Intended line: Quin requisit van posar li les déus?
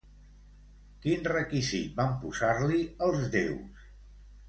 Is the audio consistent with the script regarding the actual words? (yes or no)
no